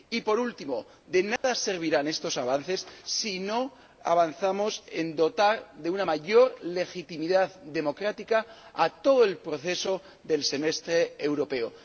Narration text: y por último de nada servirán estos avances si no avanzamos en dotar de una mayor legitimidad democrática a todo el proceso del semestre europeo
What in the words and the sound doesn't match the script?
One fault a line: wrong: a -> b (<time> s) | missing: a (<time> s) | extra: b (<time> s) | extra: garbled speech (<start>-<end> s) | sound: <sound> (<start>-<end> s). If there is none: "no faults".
sound: dropout (1.4-1.4 s)